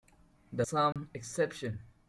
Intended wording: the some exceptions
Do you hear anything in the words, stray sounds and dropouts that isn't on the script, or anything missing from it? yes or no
yes